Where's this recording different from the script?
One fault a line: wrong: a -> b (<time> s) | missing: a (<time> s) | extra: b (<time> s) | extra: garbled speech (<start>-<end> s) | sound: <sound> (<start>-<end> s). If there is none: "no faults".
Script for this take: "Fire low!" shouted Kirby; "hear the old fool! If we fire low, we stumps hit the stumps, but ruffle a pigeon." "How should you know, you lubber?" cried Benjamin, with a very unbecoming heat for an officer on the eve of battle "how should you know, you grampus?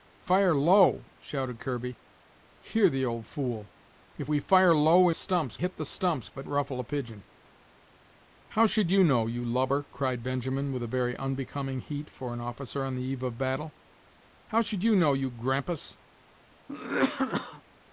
sound: cough (16.7-17.6 s)